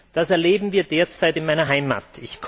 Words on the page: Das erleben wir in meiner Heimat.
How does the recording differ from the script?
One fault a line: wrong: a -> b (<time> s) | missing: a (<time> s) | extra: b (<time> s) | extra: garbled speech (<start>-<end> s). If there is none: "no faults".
extra: derzeit (0.8 s)